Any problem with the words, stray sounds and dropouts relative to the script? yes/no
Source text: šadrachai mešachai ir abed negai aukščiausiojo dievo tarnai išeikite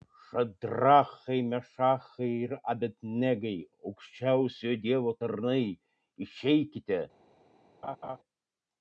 yes